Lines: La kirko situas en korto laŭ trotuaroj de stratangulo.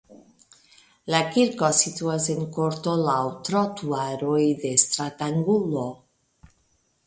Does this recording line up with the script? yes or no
yes